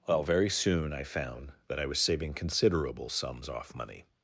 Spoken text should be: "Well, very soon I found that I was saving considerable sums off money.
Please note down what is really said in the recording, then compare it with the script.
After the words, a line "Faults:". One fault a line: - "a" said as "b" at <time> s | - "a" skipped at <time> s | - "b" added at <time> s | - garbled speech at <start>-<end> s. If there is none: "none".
"Well, very soon I found that I was saving considerable sums off money.
Faults:
none